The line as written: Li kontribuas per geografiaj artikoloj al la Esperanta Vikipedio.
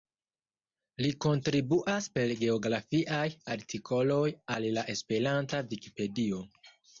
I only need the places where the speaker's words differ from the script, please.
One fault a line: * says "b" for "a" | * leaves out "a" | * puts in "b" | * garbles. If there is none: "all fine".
all fine